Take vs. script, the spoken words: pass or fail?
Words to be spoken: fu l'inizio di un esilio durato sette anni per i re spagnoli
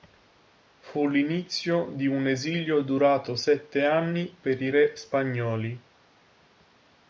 pass